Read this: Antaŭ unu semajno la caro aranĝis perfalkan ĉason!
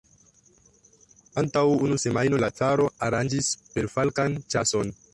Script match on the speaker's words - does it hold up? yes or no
yes